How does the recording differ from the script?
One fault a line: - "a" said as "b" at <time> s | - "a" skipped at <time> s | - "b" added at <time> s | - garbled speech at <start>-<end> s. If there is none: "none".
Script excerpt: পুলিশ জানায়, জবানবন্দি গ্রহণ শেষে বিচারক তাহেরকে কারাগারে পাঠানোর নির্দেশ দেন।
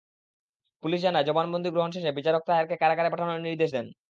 none